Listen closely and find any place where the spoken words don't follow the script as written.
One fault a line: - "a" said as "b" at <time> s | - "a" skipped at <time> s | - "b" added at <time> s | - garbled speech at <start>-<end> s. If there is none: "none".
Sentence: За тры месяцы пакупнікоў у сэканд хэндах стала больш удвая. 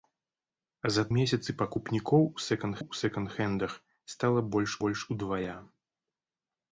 - "тры" skipped at 1.0 s
- "у сэканд" added at 2.8 s
- "больш" added at 4.8 s